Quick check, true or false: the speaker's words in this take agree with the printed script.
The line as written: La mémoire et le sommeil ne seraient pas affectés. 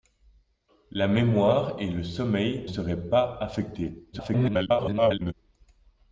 false